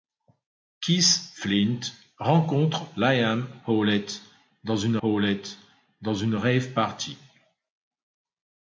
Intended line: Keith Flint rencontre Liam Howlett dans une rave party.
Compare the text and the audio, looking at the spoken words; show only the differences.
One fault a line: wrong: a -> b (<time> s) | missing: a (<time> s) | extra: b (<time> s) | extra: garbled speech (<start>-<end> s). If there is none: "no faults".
extra: Howlett dans une (5.0 s)